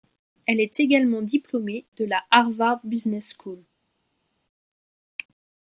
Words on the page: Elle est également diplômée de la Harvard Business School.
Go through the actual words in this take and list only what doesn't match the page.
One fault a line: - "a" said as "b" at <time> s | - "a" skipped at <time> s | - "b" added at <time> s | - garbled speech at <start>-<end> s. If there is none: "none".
none